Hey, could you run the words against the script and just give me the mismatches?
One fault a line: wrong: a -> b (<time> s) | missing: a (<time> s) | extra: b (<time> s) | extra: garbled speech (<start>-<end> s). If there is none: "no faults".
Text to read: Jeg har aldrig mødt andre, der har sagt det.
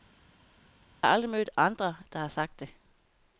no faults